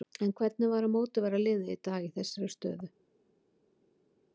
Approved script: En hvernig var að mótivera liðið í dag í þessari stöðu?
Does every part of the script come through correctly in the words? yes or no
yes